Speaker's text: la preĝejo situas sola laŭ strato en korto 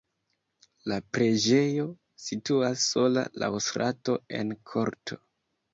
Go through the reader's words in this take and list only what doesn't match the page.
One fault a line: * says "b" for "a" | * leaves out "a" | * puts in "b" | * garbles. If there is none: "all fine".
all fine